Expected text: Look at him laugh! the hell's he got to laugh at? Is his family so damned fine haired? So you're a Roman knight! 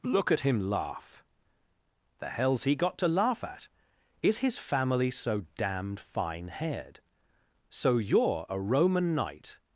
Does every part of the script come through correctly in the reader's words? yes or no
yes